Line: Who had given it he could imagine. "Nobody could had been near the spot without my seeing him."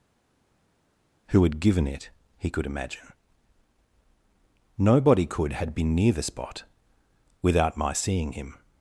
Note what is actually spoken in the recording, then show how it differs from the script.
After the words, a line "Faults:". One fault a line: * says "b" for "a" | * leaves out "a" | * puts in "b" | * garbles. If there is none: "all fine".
Who had given it he could imagine. "Nobody could had been near the spot without my seeing him."
Faults:
all fine